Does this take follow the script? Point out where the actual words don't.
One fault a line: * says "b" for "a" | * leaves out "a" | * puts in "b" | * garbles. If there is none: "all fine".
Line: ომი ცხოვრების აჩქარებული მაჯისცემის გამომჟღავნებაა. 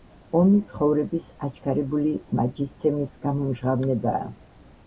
all fine